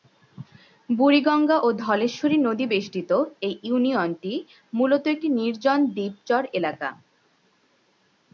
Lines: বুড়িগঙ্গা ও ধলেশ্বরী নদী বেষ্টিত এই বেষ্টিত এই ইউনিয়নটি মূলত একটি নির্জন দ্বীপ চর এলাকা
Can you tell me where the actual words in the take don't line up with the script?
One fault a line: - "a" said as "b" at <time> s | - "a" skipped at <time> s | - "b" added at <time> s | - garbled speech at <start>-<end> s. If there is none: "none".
- "বেষ্টিত এই" skipped at 3.5 s